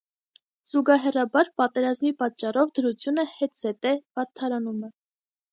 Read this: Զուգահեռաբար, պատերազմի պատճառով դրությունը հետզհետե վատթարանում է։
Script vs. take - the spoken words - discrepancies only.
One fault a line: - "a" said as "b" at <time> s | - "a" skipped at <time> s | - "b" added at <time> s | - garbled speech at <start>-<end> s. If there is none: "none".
none